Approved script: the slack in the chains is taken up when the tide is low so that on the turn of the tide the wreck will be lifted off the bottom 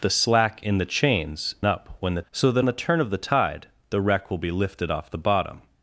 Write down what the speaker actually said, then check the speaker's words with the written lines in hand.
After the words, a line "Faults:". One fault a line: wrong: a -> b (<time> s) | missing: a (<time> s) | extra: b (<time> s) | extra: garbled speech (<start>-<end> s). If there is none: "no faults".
the slack in the chains up when the so that the turn of the tide the wreck will be lifted off the bottom
Faults:
missing: is taken (1.5 s)
missing: tide is low (2.2 s)
missing: on (2.7 s)